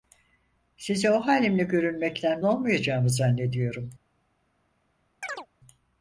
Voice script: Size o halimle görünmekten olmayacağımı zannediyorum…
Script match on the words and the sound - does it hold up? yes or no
no